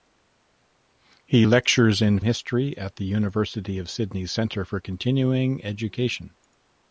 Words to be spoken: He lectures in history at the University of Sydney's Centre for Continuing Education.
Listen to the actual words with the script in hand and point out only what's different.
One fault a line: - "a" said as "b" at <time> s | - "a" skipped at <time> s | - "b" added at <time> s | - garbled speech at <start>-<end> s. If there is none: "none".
none